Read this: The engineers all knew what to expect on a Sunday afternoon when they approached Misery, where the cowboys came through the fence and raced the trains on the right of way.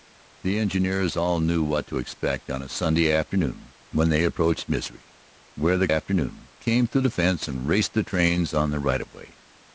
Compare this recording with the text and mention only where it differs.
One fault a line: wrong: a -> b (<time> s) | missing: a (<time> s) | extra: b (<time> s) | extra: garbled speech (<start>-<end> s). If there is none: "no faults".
wrong: cowboys -> afternoon (5.9 s)